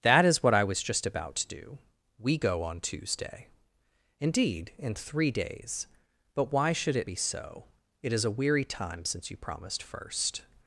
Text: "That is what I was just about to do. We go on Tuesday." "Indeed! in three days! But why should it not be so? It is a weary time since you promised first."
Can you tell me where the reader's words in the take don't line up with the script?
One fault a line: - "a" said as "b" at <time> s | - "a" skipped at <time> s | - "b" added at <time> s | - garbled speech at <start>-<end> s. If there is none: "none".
- "not" skipped at 7.1 s